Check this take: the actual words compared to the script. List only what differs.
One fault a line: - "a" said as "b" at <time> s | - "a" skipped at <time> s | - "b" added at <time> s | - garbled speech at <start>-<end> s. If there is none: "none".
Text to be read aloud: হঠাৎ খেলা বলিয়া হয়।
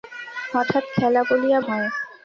none